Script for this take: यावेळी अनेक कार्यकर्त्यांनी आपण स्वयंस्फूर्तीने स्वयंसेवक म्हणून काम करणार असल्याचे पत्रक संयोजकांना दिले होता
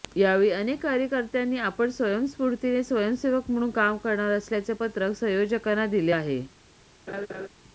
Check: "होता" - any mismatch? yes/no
yes